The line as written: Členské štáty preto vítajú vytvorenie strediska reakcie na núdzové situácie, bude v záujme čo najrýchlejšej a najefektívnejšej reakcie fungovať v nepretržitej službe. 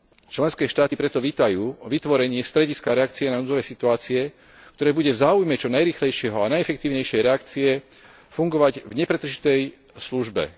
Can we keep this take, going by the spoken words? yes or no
no